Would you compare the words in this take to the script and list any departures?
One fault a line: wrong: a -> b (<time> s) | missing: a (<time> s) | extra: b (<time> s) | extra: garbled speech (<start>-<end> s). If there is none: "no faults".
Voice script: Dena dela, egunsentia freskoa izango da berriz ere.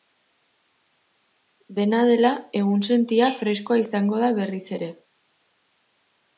no faults